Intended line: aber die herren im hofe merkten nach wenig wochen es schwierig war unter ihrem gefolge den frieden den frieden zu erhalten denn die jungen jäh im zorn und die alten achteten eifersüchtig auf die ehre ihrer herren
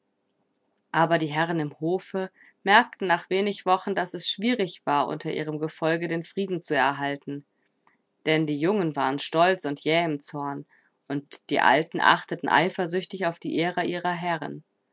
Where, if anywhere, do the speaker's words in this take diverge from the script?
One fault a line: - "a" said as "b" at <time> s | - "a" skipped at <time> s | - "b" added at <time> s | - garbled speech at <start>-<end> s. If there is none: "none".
- "daß" added at 3.9 s
- "den frieden" skipped at 6.6 s
- "waren stolz und" added at 8.9 s